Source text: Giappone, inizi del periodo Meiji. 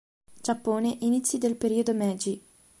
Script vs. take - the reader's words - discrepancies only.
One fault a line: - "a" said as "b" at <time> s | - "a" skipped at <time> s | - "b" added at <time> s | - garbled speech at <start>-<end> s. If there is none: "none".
none